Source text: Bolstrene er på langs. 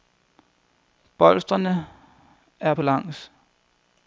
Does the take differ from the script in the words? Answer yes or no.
no